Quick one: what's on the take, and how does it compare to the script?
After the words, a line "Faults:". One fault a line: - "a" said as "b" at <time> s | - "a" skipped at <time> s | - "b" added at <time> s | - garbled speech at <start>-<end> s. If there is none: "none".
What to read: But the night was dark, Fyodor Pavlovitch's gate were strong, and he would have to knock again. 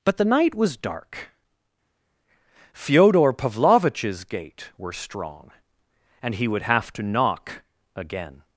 But the night was dark, Fyodor Pavlovitch's gate were strong, and he would have to knock again.
Faults:
none